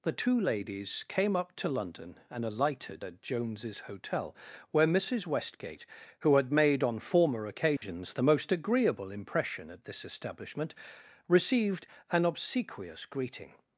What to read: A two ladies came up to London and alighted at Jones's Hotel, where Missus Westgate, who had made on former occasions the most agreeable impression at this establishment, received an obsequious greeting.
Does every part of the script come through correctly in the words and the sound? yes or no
no